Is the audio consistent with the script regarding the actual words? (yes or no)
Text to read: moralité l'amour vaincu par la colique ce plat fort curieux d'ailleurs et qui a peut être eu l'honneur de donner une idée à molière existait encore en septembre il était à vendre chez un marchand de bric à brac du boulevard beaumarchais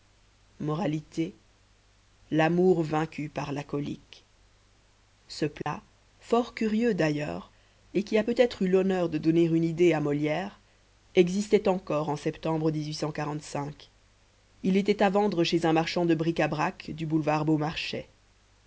yes